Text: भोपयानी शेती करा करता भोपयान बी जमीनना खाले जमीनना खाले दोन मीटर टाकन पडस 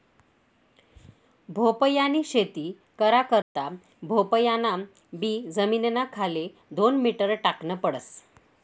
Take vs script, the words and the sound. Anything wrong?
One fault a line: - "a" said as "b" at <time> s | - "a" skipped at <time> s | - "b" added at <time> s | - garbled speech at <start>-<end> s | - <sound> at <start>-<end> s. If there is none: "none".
- dropout at 3.4-3.6 s
- "जमीनना खाले" skipped at 6.5 s